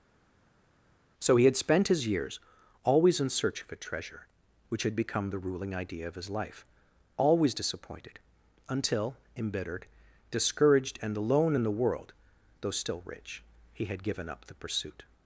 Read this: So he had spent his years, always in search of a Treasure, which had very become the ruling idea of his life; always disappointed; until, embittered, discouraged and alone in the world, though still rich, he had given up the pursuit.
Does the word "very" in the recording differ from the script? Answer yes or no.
yes